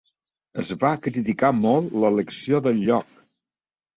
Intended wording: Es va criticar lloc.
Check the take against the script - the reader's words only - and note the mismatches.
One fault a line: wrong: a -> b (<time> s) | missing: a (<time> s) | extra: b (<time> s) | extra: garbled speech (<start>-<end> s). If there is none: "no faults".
extra: molt l'elecció del (1.6 s)